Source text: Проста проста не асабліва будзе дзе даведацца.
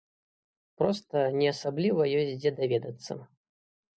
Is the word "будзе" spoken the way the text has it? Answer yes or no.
no